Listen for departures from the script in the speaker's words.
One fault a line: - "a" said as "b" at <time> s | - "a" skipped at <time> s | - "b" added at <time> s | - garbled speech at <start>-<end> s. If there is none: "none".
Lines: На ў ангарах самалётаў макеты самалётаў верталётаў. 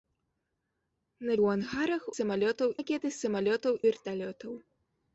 none